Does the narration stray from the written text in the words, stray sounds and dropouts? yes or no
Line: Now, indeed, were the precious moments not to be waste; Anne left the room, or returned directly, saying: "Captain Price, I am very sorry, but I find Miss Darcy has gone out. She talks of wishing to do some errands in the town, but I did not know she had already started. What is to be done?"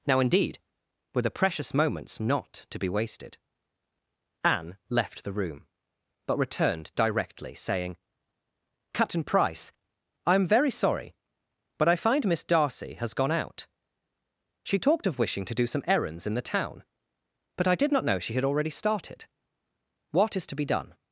yes